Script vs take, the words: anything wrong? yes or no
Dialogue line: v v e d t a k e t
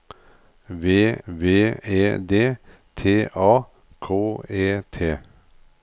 no